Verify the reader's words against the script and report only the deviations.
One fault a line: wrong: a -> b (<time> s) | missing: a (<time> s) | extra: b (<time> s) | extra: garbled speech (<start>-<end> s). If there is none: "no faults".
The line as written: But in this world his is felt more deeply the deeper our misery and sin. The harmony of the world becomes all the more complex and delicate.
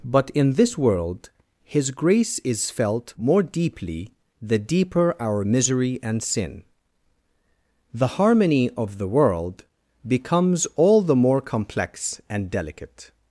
extra: grace (1.9 s)